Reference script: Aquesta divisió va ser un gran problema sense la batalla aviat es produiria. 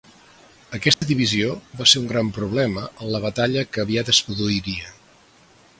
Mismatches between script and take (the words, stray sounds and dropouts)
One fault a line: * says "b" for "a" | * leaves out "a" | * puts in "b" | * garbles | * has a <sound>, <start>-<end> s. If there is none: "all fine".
* has a dropout, 0.9-1.0 s
* says "en" for "sense"
* puts in "que"